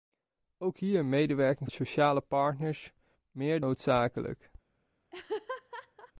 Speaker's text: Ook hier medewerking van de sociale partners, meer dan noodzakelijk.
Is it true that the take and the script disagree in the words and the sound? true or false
true